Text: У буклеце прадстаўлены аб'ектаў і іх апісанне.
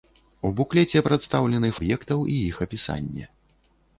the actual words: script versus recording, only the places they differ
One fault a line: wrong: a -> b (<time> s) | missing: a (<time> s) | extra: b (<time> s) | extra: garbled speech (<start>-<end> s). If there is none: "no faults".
no faults